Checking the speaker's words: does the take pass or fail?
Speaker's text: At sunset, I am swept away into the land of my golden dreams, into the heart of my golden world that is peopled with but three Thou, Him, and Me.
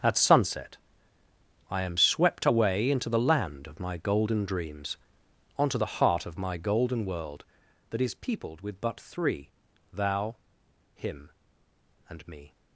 fail